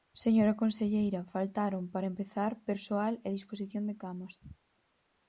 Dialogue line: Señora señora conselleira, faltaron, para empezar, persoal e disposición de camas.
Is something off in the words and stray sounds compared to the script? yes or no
yes